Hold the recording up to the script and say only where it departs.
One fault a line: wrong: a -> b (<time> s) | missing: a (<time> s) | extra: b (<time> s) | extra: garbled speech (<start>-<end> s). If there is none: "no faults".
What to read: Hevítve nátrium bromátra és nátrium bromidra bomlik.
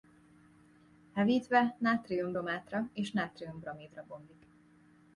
no faults